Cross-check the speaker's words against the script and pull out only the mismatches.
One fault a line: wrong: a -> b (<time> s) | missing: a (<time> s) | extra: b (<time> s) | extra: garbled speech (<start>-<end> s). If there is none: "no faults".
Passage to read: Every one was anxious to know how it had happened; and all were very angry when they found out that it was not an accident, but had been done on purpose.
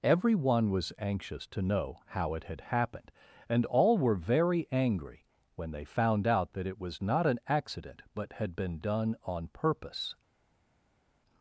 no faults